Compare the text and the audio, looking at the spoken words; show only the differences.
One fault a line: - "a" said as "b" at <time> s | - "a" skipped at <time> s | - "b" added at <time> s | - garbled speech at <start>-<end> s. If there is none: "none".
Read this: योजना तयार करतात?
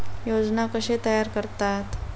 - "कशे" added at 0.7 s